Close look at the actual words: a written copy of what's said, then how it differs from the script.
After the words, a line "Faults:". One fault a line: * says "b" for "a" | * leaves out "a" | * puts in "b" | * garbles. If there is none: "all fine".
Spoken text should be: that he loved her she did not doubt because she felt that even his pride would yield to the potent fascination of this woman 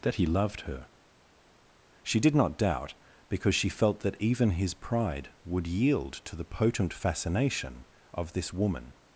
that he loved her she did not doubt because she felt that even his pride would yield to the potent fascination of this woman
Faults:
all fine